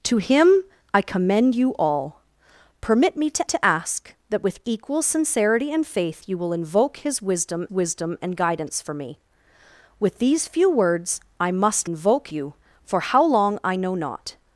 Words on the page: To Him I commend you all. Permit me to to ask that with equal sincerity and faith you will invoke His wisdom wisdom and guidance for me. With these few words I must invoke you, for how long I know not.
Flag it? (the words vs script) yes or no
no